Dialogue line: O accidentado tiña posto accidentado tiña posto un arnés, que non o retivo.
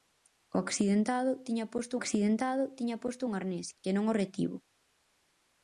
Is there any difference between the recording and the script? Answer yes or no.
no